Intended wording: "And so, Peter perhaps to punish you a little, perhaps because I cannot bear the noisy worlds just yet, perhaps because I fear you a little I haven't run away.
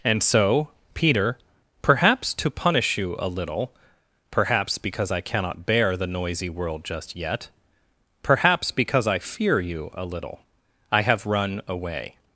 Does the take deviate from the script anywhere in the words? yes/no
yes